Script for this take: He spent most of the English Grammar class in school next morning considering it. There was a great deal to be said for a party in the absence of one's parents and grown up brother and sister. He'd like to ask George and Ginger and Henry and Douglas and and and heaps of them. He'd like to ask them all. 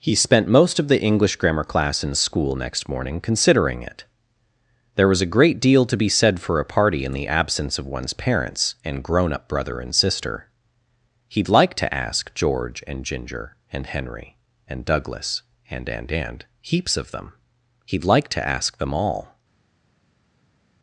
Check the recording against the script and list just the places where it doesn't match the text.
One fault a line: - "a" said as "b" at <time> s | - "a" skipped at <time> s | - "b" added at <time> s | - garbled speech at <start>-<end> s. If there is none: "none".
none